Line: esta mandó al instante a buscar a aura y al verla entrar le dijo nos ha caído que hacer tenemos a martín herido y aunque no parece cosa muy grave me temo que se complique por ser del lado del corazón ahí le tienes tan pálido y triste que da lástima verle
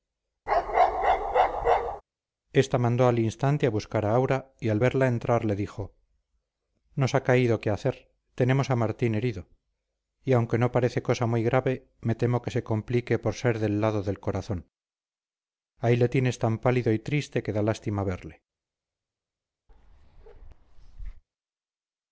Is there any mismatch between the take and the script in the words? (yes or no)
no